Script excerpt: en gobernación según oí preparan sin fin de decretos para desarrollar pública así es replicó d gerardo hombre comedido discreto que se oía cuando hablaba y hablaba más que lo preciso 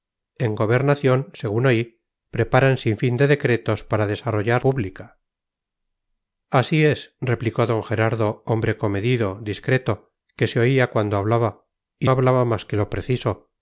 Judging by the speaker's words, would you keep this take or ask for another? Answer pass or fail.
pass